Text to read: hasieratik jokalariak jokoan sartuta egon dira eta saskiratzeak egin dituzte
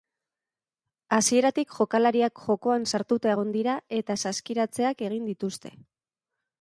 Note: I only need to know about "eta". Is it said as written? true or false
true